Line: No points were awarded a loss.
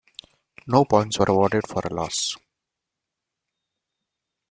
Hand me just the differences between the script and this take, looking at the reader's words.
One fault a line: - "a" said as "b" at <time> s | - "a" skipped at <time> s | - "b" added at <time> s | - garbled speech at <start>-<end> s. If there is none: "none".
- "for" added at 1.7 s